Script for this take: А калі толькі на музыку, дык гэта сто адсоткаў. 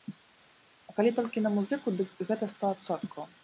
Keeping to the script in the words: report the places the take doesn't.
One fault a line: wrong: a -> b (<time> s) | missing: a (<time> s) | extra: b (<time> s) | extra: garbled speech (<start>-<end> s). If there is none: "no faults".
no faults